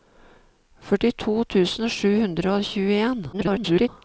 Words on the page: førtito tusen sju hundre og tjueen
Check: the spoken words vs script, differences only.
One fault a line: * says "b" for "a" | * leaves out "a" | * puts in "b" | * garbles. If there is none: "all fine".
* garbles